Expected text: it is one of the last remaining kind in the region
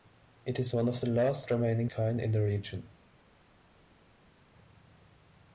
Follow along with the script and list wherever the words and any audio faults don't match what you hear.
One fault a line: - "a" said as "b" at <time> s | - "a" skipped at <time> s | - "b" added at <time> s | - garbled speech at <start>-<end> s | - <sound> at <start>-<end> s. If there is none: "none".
none